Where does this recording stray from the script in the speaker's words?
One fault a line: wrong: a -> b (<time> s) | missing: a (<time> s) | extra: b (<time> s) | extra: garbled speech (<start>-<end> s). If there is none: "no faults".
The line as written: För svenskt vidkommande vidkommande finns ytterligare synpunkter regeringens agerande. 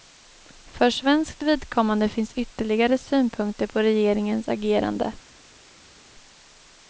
missing: vidkommande (2.1 s)
extra: på (3.7 s)